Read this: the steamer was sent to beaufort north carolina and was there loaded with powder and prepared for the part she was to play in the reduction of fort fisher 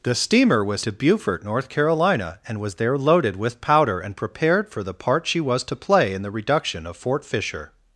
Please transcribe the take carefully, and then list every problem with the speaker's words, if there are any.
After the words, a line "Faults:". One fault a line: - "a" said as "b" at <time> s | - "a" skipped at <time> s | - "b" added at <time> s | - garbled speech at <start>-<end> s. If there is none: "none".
the steamer was to beaufort north carolina and was there loaded with powder and prepared for the part she was to play in the reduction of fort fisher
Faults:
- "sent" skipped at 0.8 s